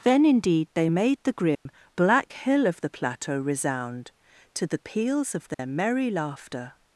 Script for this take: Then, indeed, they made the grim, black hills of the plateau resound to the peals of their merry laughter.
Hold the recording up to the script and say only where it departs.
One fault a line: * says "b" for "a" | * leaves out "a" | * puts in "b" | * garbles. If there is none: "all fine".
* says "hill" for "hills"